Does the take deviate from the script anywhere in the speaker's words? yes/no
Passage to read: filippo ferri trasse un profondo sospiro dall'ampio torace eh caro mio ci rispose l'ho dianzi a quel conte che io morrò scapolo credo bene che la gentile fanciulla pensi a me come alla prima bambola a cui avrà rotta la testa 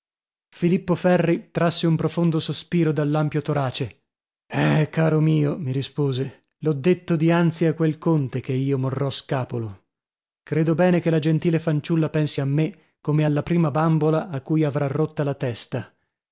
yes